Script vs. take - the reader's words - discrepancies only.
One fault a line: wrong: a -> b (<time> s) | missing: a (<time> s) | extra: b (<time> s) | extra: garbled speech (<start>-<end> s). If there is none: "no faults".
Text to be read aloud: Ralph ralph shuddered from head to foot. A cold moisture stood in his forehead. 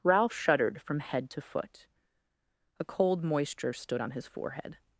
missing: ralph (0.3 s)
wrong: in -> on (4.0 s)